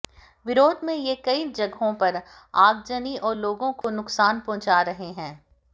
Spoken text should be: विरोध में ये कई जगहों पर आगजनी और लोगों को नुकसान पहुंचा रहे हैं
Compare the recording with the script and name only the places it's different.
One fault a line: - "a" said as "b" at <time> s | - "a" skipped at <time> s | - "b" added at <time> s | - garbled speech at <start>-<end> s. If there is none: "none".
none